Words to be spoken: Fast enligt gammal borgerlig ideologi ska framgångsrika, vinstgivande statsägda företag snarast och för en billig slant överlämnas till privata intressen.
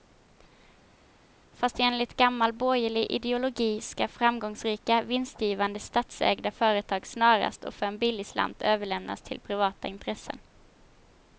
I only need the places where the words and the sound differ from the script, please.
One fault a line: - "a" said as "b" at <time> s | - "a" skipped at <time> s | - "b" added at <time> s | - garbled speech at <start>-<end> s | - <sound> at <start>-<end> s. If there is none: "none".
none